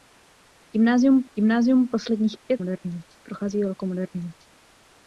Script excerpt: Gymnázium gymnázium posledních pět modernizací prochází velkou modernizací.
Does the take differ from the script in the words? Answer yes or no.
no